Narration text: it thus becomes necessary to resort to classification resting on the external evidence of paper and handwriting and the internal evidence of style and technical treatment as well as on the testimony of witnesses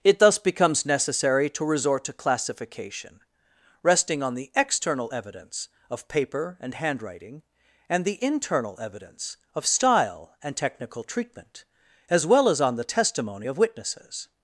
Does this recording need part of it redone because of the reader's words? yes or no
no